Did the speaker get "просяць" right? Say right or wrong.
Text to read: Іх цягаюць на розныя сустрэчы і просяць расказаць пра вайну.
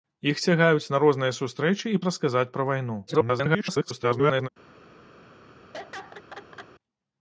wrong